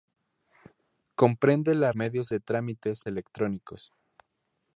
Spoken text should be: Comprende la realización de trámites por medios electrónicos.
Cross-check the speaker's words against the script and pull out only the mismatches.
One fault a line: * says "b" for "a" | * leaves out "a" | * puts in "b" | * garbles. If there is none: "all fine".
* says "medios" for "realización"
* leaves out "por medios"